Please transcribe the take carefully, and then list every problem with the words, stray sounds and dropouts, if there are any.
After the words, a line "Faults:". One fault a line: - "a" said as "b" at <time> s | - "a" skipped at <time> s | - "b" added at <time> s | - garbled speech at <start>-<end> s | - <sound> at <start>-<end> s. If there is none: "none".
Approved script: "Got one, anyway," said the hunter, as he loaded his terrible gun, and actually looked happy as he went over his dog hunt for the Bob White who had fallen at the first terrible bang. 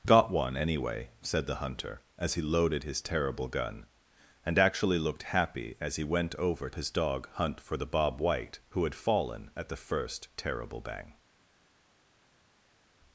"Got one, anyway," said the hunter, as he loaded his terrible gun, and actually looked happy as he went over his dog hunt for the Bob White who had fallen at the first terrible bang.
Faults:
none